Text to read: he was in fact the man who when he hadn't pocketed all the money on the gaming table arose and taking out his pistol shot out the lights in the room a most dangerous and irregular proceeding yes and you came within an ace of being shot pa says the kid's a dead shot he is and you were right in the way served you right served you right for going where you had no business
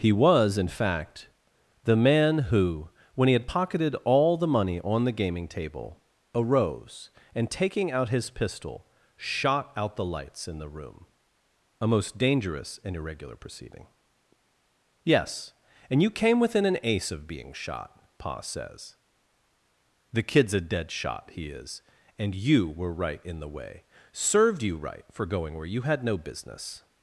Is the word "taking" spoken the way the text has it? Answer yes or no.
yes